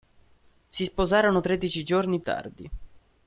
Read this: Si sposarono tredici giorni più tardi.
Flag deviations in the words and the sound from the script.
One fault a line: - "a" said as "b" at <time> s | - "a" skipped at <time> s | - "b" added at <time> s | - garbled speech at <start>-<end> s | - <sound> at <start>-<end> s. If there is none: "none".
- "più" skipped at 2.2 s